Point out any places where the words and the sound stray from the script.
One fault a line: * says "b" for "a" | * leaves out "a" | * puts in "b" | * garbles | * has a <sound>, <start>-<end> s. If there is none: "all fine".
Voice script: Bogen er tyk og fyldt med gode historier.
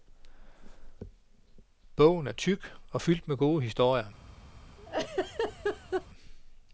* has a laugh, 4.8-6.1 s